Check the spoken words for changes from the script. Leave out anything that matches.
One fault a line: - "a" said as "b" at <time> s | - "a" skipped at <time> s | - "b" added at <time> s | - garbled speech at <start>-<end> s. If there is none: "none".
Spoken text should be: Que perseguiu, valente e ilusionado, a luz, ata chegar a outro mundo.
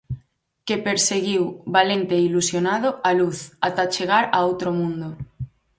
none